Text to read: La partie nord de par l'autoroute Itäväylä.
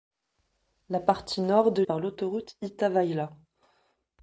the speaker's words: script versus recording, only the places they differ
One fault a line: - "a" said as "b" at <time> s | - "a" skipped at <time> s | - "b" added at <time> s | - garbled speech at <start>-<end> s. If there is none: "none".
none